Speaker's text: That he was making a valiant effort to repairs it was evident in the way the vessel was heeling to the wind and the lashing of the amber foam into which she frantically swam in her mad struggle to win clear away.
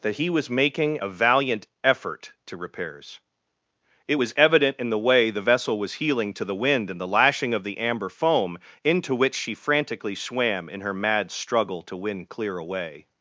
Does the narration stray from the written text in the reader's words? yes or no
no